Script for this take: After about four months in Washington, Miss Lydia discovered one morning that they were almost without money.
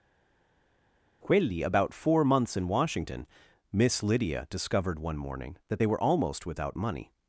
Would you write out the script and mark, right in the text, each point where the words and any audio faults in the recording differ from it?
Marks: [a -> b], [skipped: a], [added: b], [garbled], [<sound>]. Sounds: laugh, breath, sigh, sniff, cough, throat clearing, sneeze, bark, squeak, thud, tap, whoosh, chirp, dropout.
[After -> Quelli] about four months in Washington, Miss Lydia discovered one morning that they were almost without money.